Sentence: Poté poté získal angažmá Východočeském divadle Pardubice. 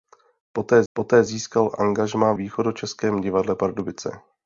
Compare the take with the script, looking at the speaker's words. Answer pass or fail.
pass